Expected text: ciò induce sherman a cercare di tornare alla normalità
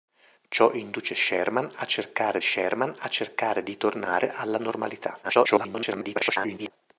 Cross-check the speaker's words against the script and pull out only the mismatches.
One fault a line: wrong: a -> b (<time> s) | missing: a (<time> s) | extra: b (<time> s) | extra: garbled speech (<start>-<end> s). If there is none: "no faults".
extra: sherman a cercare (2.4 s)
extra: garbled speech (5.2-6.7 s)